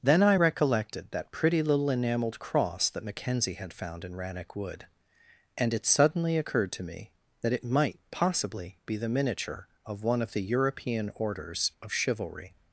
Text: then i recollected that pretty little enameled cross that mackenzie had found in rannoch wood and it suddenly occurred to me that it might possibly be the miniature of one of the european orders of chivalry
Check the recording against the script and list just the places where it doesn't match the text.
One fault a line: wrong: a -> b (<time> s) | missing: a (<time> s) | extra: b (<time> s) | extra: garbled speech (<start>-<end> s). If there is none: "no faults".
no faults